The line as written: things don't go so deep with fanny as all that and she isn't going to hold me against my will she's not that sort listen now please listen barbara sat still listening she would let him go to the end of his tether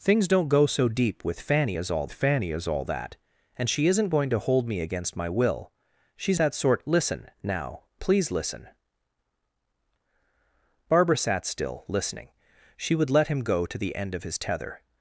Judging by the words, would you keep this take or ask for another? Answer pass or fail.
fail